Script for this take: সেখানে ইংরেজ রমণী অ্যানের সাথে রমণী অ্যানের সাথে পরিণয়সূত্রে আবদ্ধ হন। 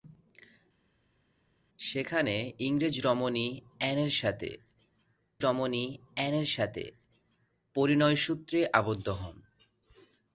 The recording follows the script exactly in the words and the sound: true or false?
true